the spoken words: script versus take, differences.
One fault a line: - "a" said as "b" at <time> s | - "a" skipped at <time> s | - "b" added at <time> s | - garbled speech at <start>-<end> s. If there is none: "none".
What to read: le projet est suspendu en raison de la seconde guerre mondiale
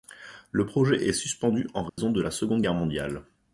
none